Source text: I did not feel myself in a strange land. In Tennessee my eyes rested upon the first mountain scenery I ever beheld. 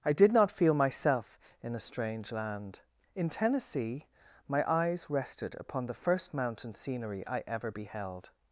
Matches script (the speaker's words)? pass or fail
pass